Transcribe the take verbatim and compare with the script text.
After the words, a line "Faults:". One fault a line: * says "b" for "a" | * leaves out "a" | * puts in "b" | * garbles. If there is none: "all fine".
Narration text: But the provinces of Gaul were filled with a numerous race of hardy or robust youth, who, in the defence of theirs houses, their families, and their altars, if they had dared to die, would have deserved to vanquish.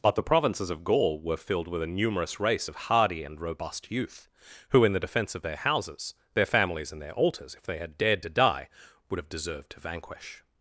But the provinces of Gaul were filled with a numerous race of hardy and robust youth, who, in the defence of their houses, their families, and their altars, if they had dared to die, would have deserved to vanquish.
Faults:
* says "and" for "or"
* says "their" for "theirs"